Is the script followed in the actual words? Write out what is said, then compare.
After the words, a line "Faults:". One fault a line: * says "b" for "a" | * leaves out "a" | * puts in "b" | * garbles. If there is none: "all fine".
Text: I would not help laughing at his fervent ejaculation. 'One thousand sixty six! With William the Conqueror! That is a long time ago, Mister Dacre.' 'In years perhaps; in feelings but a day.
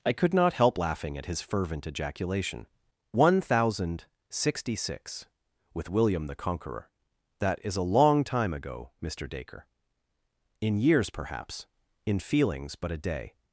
I could not help laughing at his fervent ejaculation. 'One thousand sixty six! With William the Conqueror! That is a long time ago, Mister Dacre.' 'In years perhaps; in feelings but a day.
Faults:
* says "could" for "would"